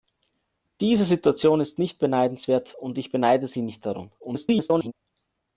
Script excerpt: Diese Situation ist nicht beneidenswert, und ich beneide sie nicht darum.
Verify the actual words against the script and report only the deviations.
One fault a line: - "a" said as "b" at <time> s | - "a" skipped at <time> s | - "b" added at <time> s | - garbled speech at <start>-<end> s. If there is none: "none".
- garbled speech at 4.2-4.9 s